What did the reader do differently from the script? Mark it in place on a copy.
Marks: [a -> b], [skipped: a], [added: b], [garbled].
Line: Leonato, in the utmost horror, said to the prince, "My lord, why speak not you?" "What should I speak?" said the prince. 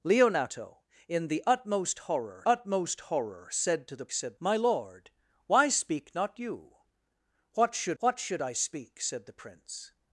Leonato, in the utmost horror, [added: utmost horror] said to the [prince, -> said] "My lord, why speak not you?" "What should [added: what should] I speak?" said the prince.